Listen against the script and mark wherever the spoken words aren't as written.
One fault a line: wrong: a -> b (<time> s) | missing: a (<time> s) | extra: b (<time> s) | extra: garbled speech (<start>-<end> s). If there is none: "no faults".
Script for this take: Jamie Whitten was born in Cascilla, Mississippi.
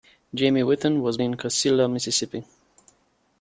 missing: born (1.2 s)